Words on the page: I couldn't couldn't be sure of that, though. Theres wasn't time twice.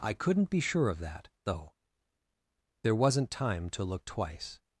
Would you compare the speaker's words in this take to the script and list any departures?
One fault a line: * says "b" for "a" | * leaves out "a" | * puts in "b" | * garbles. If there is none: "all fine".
* leaves out "couldn't"
* says "There" for "Theres"
* puts in "to look"